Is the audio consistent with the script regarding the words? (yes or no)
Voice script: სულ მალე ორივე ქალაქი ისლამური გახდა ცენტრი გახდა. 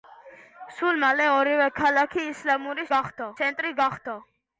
yes